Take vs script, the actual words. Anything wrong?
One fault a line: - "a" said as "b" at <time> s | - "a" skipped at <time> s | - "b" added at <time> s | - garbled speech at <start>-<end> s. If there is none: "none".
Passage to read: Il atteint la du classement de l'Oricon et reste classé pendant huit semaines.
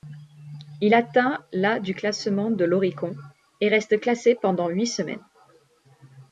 none